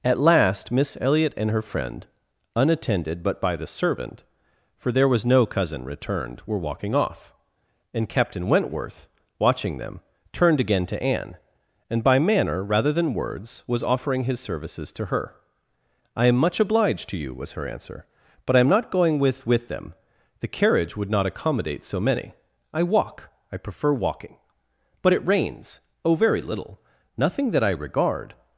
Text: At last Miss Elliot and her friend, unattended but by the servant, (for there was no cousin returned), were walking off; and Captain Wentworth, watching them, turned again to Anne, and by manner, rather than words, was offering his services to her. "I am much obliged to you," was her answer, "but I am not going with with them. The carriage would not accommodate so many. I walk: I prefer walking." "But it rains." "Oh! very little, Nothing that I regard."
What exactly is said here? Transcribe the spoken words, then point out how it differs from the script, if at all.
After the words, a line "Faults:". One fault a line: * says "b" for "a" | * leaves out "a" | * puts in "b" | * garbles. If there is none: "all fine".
At last Miss Elliot and her friend, unattended but by the servant, (for there was no cousin returned), were walking off; and Captain Wentworth, watching them, turned again to Anne, and by manner, rather than words, was offering his services to her. "I am much obliged to you," was her answer, "but I am not going with with them. The carriage would not accommodate so many. I walk: I prefer walking." "But it rains." "Oh! very little, Nothing that I regard."
Faults:
all fine